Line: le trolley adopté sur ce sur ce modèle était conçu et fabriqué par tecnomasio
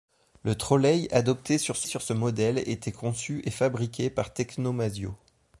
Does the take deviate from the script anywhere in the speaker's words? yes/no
no